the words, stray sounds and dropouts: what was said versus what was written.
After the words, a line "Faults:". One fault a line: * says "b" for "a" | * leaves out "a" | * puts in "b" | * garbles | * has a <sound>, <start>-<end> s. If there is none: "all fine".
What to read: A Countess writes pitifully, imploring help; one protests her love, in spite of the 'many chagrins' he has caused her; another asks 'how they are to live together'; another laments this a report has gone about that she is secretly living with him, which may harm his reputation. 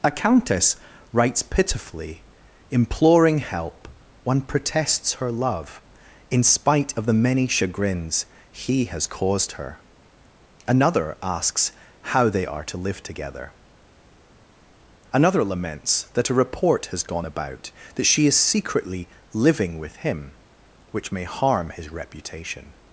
A Countess writes pitifully, imploring help; one protests her love, in spite of the 'many chagrins' he has caused her; another asks 'how they are to live together'; another laments that a report has gone about that she is secretly living with him, which may harm his reputation.
Faults:
* says "that" for "this"